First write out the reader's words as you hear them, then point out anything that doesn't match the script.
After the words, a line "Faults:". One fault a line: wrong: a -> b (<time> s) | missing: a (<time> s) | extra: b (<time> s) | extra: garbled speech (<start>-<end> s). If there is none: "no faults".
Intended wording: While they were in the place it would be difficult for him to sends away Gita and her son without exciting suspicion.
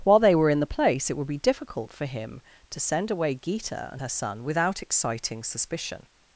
While they were in the place it would be difficult for him to send away Gita and her son without exciting suspicion.
Faults:
wrong: sends -> send (2.8 s)